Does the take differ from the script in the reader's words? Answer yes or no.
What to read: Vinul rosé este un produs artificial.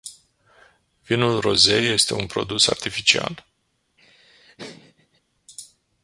no